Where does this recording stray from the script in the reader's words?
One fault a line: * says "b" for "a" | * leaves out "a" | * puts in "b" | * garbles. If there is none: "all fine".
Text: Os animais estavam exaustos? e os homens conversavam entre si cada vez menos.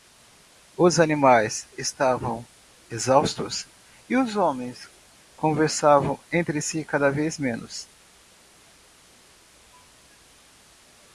all fine